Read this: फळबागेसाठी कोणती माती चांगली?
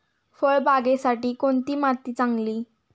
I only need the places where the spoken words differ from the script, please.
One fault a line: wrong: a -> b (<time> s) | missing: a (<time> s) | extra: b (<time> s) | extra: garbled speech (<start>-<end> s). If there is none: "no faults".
no faults